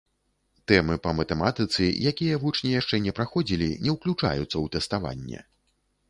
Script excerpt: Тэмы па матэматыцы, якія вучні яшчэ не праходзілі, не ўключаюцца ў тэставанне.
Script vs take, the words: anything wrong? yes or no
no